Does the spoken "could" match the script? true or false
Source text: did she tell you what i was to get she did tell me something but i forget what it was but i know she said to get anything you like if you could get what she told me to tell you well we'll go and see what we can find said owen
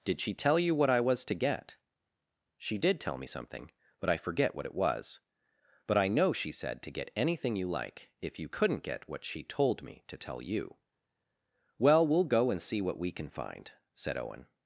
false